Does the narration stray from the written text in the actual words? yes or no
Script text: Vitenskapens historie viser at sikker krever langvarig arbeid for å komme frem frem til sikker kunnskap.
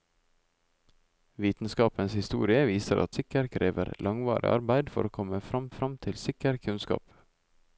no